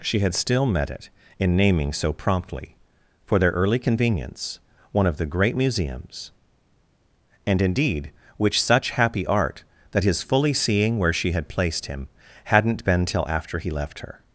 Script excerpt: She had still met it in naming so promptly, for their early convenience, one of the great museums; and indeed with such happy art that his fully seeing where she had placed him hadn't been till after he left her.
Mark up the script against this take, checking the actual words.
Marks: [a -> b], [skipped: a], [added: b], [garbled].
She had still met it in naming so promptly, for their early convenience, one of the great museums; and indeed [with -> which] such happy art that his fully seeing where she had placed him hadn't been till after he left her.